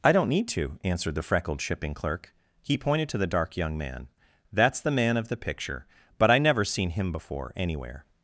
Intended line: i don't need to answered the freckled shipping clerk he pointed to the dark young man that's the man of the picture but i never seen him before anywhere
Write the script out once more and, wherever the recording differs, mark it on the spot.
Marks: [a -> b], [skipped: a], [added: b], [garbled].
i don't need to answered the freckled shipping clerk he pointed to the dark young man that's the man of the picture but i never seen him before anywhere